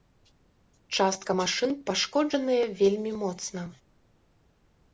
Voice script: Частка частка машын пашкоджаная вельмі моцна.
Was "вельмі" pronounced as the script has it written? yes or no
yes